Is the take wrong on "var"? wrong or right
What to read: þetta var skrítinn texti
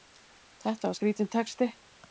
right